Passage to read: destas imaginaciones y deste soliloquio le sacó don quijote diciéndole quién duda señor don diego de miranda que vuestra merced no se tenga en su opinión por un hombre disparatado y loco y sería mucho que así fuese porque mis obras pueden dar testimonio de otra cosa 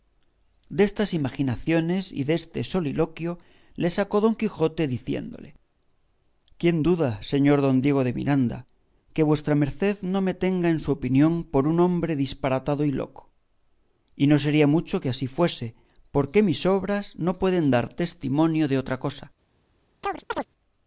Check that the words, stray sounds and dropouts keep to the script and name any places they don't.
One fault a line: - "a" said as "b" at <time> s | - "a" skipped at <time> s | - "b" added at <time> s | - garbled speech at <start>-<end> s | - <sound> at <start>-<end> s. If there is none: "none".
- "se" said as "me" at 10.2 s
- "no" added at 14.3 s
- "no" added at 17.1 s
- chirp at 20.0-20.5 s